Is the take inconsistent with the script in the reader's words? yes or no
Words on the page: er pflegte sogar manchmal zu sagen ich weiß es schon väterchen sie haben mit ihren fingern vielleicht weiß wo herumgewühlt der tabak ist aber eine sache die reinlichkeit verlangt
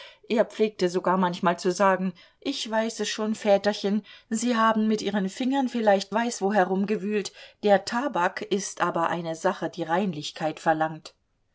no